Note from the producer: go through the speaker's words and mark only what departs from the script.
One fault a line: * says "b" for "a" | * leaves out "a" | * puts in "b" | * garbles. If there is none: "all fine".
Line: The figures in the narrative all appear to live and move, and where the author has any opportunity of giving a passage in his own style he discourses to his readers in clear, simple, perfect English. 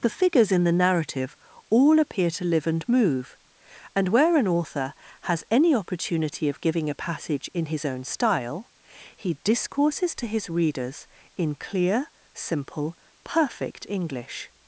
* says "an" for "the"